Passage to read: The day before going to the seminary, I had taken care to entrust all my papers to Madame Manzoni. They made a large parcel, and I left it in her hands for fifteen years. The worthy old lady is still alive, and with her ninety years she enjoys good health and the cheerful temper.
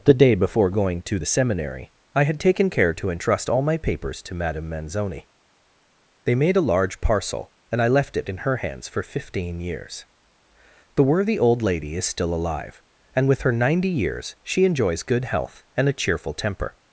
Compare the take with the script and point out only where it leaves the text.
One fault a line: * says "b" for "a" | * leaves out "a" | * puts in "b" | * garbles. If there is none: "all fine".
* says "a" for "the"